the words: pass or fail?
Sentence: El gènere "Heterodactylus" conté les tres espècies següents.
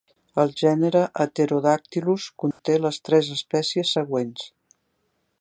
pass